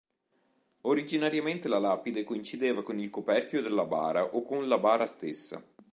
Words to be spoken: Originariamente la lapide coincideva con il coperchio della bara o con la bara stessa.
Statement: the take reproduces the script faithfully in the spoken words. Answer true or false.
true